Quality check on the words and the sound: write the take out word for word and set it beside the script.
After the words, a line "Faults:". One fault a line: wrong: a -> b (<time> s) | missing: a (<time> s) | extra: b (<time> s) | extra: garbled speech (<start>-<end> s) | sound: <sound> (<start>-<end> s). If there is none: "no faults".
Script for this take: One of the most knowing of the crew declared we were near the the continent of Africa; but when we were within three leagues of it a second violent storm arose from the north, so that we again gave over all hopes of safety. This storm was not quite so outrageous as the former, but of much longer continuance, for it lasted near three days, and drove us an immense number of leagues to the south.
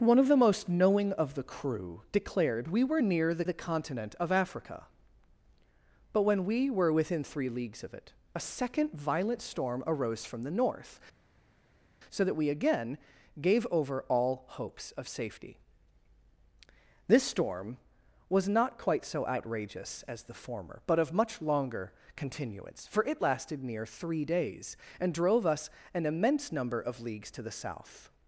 One of the most knowing of the crew declared we were near the the continent of Africa; but when we were within three leagues of it a second violent storm arose from the north, so that we again gave over all hopes of safety. This storm was not quite so outrageous as the former, but of much longer continuance, for it lasted near three days, and drove us an immense number of leagues to the south.
Faults:
no faults